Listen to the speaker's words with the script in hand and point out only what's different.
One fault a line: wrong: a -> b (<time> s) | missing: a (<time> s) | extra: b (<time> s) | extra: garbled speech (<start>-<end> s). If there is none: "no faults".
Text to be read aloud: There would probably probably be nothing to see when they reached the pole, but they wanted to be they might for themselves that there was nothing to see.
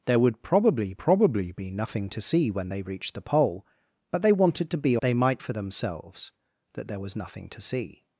no faults